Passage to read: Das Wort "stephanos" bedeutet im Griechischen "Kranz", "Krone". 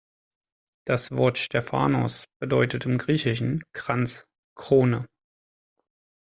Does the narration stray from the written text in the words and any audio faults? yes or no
no